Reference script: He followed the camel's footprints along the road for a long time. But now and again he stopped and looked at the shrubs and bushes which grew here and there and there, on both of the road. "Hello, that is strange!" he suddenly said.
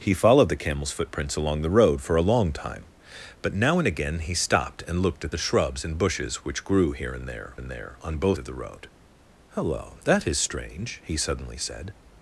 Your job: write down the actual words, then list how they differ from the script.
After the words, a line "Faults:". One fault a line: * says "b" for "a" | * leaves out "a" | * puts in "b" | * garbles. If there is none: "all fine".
He followed the camel's footprints along the road for a long time. But now and again he stopped and looked at the shrubs and bushes which grew here and there and there, on both of the road. "Hello, that is strange!" he suddenly said.
Faults:
all fine